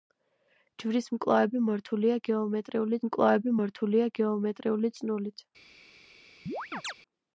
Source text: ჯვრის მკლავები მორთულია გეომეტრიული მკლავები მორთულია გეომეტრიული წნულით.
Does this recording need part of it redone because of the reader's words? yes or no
no